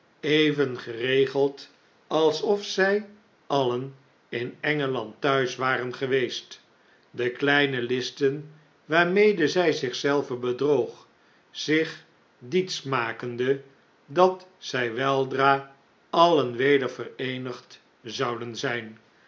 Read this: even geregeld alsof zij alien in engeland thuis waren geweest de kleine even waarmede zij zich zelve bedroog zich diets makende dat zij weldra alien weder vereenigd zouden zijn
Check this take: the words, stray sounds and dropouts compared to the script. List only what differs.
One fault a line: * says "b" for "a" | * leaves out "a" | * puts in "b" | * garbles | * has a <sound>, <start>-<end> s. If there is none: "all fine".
* says "listen" for "even"